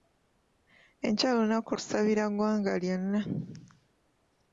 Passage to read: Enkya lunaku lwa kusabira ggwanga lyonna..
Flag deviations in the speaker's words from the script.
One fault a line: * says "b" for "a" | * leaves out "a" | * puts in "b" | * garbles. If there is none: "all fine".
* leaves out "lwa"